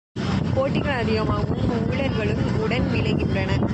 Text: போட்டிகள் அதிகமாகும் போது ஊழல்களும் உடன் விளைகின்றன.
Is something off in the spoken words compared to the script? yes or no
yes